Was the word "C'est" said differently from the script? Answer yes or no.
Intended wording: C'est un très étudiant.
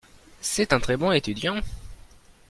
no